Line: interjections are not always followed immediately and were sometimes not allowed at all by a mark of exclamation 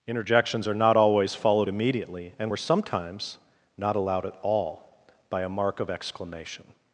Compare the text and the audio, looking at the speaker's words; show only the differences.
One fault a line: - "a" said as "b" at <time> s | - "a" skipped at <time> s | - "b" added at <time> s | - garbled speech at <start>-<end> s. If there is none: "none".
none